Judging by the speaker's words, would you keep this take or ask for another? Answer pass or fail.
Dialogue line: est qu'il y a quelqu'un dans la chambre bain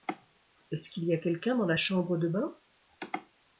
fail